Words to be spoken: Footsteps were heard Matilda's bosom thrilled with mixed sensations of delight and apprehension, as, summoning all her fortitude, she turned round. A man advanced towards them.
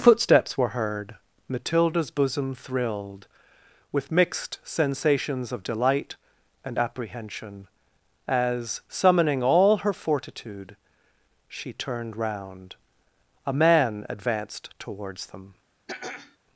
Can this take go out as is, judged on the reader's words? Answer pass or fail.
pass